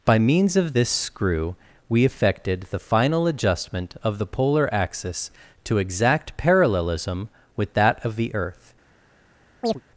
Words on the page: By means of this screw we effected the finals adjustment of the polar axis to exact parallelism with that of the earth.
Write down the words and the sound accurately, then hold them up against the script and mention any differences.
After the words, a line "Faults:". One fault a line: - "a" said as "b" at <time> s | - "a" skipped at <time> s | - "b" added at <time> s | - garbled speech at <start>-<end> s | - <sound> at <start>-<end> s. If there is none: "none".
By means of this screw we effected the final adjustment of the polar axis to exact parallelism with that of the earth.
Faults:
- "finals" said as "final" at 2.8 s
- chirp at 9.6-9.8 s